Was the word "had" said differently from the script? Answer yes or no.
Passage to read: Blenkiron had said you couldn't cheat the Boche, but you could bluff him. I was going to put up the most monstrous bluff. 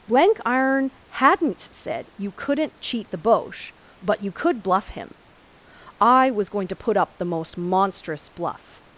yes